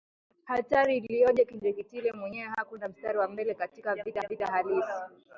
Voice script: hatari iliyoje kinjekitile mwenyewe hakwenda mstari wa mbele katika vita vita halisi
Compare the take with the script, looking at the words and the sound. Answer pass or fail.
pass